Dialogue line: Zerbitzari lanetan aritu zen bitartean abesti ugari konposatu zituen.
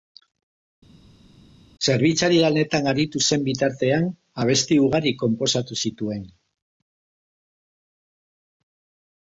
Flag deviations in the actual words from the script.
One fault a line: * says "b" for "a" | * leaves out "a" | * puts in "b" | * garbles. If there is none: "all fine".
all fine